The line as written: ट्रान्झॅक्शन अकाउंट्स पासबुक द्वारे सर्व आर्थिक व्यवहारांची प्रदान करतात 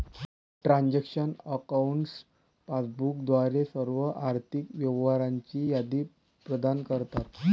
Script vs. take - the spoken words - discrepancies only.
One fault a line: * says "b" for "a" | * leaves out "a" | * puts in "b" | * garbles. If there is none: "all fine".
* puts in "यादी"